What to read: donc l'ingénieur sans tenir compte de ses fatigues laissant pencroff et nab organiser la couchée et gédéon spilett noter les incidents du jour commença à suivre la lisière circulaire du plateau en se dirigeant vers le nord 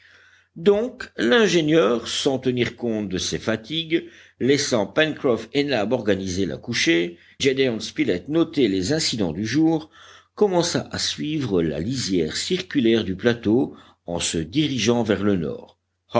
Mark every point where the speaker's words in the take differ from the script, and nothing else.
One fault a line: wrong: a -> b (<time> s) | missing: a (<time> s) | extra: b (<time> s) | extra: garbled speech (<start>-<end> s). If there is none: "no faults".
missing: et (7.2 s)